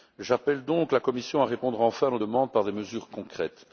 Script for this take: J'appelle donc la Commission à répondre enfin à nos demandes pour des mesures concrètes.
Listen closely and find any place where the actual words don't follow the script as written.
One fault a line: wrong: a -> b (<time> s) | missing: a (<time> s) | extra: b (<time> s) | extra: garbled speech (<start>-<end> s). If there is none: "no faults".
wrong: pour -> par (2.5 s)